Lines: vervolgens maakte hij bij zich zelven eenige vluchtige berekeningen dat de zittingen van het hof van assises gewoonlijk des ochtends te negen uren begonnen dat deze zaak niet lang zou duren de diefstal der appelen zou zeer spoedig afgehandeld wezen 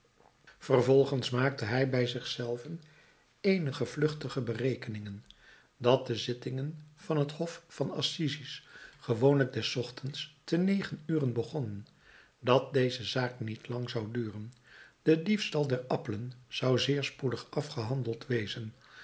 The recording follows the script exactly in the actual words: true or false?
true